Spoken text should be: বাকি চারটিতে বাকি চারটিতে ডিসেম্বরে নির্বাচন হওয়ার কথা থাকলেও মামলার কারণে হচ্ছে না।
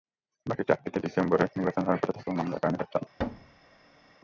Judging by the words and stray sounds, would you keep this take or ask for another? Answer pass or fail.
fail